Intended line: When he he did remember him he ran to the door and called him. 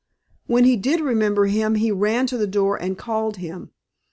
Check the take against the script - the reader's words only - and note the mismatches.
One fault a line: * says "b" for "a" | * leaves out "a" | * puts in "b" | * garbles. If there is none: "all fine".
* leaves out "he"